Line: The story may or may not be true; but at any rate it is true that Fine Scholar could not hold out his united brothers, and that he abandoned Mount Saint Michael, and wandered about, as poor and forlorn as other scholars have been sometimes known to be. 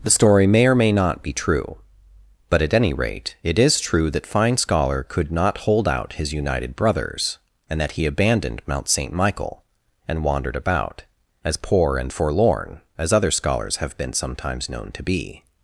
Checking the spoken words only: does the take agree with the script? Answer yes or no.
yes